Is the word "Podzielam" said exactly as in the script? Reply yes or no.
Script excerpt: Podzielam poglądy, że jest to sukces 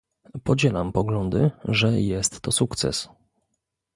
yes